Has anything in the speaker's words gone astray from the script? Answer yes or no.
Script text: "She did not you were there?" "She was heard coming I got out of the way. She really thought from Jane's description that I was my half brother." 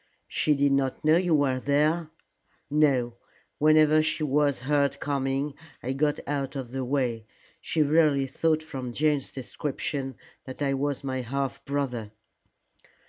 yes